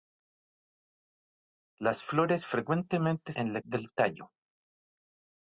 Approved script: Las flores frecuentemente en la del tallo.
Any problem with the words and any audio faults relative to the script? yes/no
no